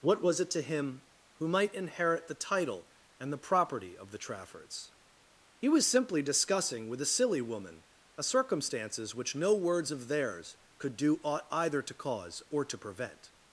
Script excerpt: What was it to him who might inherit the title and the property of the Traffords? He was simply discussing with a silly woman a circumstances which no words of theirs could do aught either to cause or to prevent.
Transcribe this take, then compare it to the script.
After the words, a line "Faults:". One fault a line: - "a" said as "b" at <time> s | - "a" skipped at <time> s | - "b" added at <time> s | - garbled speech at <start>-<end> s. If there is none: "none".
What was it to him who might inherit the title and the property of the Traffords? He was simply discussing with a silly woman a circumstances which no words of theirs could do aught either to cause or to prevent.
Faults:
none